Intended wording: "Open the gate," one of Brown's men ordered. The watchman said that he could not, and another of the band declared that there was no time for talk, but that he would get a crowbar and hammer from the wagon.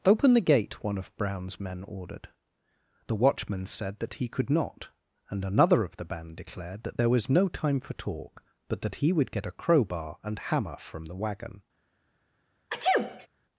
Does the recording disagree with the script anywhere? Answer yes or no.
no